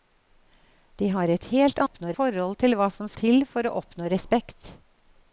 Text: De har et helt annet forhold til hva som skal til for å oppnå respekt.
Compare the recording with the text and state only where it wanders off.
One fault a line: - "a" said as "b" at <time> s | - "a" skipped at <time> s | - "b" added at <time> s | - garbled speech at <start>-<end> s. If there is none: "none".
- "annet" said as "oppnå" at 1.9 s
- "skal" skipped at 3.1 s